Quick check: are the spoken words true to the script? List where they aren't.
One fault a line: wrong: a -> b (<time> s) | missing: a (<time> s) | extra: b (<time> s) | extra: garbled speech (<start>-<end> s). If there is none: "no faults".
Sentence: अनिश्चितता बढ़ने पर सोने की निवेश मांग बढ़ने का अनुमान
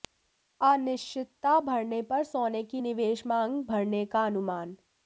no faults